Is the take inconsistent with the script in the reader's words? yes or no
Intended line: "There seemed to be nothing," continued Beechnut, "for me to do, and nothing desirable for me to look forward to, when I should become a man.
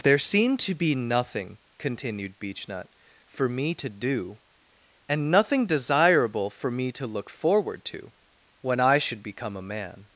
no